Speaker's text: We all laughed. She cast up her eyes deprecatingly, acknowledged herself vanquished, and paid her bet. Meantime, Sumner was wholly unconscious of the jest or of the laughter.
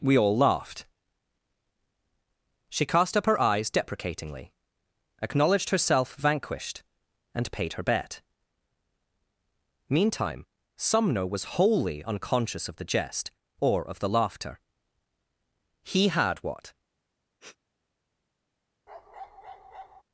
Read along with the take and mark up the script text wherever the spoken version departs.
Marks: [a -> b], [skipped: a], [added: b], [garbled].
We all laughed. She cast up her eyes deprecatingly, acknowledged herself vanquished, and paid her bet. Meantime, Sumner was wholly unconscious of the jest or of the laughter. [added: He had what]